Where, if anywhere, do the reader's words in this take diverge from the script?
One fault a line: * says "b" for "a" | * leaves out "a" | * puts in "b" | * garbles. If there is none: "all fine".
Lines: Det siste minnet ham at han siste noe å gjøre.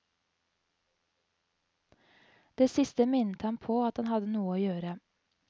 * puts in "på"
* says "hadde" for "siste"